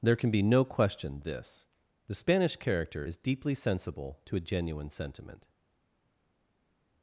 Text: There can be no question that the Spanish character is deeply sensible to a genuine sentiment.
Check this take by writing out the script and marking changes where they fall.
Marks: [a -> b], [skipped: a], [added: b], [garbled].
There can be no question [that -> this] the Spanish character is deeply sensible to a genuine sentiment.